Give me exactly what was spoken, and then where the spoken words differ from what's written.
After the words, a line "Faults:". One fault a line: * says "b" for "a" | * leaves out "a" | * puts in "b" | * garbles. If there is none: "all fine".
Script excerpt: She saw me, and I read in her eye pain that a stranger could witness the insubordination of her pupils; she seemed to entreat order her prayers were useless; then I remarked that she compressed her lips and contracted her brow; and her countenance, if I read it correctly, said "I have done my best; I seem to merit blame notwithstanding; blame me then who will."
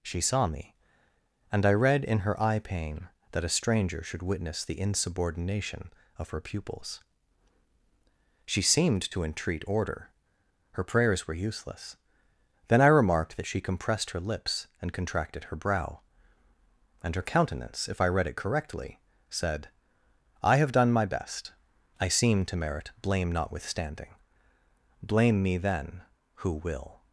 She saw me, and I read in her eye pain that a stranger should witness the insubordination of her pupils; she seemed to entreat order her prayers were useless; then I remarked that she compressed her lips and contracted her brow; and her countenance, if I read it correctly, said "I have done my best; I seem to merit blame notwithstanding; blame me then who will."
Faults:
* says "should" for "could"